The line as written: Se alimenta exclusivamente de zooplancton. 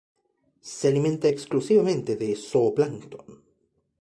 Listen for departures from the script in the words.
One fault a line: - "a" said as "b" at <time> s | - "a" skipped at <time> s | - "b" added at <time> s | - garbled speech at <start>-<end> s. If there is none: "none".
none